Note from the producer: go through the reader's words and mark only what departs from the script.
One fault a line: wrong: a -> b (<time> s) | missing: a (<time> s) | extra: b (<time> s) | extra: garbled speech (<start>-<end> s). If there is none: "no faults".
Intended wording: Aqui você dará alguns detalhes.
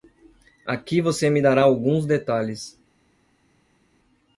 extra: me (1.3 s)